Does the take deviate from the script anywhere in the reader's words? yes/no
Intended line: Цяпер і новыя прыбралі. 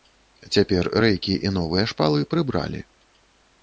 yes